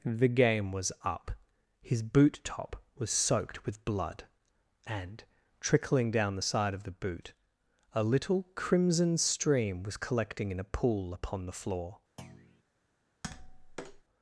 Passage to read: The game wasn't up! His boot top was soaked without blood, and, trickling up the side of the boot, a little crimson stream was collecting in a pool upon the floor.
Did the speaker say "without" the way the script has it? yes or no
no